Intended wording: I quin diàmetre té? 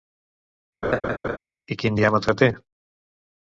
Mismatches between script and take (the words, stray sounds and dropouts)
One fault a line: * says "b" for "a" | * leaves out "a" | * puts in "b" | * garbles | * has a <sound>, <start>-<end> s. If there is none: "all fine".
* has a laugh, 0.8-1.4 s